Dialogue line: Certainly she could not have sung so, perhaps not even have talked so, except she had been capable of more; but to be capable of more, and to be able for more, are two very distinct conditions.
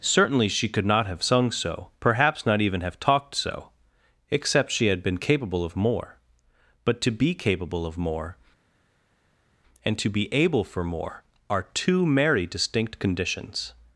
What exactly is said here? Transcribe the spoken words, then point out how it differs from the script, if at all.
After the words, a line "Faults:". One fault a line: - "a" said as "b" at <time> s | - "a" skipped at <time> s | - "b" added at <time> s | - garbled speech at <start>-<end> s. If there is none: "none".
Certainly she could not have sung so, perhaps not even have talked so, except she had been capable of more; but to be capable of more, and to be able for more, are two merry distinct conditions.
Faults:
- "very" said as "merry" at 12.1 s